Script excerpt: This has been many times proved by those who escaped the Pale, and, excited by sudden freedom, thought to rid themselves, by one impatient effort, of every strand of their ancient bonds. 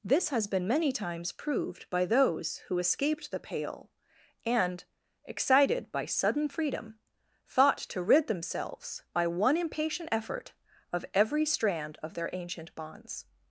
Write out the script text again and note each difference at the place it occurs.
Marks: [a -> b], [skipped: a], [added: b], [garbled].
This has been many times proved by those who escaped the Pale, and, excited by sudden freedom, thought to rid themselves, by one impatient effort, of every strand of their ancient bonds.